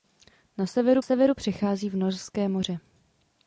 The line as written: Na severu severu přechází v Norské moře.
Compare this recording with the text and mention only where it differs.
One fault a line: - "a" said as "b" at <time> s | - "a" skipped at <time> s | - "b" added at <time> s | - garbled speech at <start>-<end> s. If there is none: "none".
none